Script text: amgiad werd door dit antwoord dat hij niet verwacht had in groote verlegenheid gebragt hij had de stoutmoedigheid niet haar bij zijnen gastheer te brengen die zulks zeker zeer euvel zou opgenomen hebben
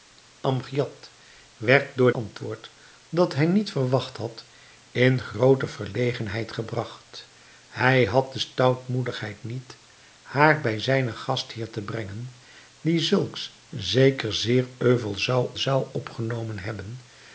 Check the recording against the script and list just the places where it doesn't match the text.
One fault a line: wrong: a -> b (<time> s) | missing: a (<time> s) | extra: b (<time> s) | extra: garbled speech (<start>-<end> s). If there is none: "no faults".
missing: dit (2.1 s)
extra: zou (15.6 s)